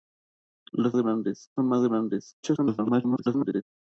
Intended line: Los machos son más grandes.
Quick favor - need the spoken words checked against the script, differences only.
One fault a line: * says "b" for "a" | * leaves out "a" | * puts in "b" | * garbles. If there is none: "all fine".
* says "grandes" for "machos"
* garbles